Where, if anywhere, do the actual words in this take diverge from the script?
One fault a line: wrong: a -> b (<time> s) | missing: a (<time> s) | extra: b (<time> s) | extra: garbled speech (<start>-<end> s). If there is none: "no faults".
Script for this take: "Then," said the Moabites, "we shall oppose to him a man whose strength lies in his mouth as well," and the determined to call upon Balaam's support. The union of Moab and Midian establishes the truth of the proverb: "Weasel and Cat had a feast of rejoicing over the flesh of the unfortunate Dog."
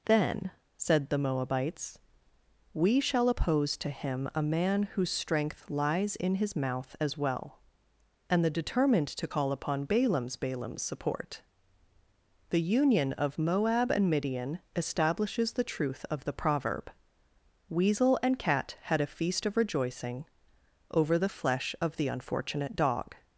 extra: Balaam's (10.4 s)